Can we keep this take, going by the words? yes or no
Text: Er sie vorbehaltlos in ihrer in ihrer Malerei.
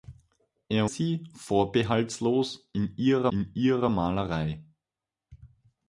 yes